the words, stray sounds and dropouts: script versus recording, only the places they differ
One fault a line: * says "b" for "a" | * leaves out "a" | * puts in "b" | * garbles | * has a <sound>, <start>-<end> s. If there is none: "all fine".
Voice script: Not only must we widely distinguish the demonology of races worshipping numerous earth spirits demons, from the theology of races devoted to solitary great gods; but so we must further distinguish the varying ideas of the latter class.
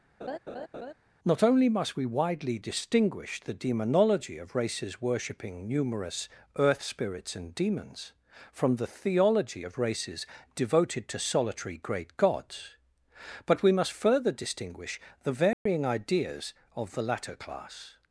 * has a laugh, 0.2-0.9 s
* puts in "and"
* leaves out "so"
* has a dropout, 15.5-15.7 s